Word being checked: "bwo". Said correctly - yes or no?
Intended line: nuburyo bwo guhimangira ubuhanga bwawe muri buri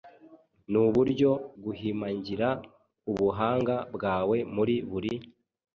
no